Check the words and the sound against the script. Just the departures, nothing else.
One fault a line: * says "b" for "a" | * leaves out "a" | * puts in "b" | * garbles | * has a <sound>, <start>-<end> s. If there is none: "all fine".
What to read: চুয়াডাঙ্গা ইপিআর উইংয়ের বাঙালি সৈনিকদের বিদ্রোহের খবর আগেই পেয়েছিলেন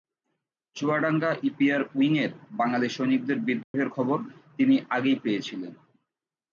* has a dropout, 3.6-3.7 s
* puts in "তিনি"